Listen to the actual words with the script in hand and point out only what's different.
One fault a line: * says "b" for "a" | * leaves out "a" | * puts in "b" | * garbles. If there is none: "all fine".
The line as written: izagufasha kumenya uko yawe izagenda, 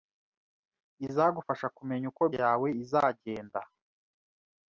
all fine